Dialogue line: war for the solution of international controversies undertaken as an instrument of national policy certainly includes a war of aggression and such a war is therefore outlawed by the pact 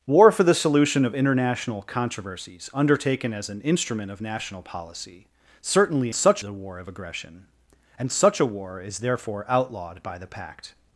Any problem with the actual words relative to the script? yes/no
yes